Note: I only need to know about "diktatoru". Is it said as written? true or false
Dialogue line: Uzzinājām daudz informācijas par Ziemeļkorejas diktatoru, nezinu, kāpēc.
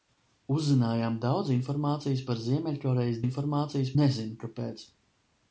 false